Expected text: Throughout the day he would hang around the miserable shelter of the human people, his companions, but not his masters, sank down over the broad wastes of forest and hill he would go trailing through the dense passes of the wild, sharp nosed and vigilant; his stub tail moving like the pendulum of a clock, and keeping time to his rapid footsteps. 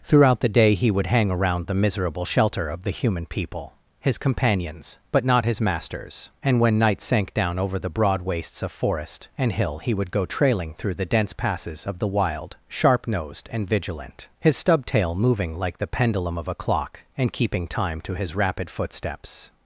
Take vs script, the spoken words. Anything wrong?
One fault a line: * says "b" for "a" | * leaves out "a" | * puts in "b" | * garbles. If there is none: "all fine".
* puts in "and when night"